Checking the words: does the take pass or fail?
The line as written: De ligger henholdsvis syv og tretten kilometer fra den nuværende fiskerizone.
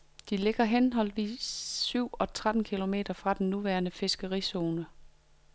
pass